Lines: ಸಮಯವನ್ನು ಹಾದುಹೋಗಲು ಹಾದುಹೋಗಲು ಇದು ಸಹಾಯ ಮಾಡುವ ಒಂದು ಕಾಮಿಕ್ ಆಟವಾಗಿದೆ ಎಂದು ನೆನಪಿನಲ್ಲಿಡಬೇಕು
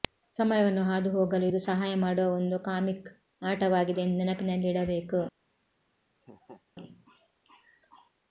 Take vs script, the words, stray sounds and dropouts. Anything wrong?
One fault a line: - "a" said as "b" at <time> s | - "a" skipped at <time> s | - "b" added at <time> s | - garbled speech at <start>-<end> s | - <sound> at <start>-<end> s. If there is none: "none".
- "ಹಾದುಹೋಗಲು" skipped at 1.4 s
- laugh at 6.2-6.6 s